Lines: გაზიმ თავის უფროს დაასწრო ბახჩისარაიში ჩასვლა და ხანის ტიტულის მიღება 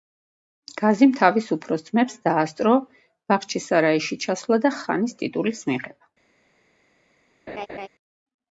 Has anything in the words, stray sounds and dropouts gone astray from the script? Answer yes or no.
yes